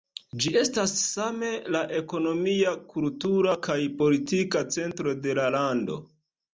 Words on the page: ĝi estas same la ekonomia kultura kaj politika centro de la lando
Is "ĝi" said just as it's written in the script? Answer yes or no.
yes